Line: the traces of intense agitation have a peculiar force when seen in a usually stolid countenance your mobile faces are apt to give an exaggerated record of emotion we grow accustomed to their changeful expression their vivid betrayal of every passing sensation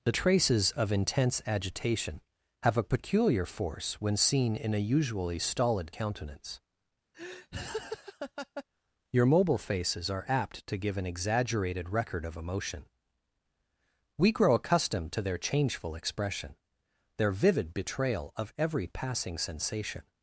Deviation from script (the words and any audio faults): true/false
true